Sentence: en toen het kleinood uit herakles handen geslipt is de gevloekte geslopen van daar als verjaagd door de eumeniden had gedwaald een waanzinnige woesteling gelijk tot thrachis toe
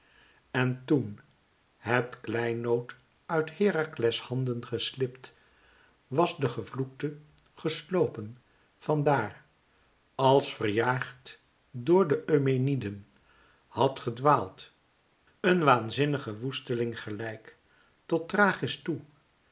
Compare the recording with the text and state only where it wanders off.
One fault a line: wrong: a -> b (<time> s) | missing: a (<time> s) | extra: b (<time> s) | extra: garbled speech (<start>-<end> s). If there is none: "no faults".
wrong: is -> was (6.1 s)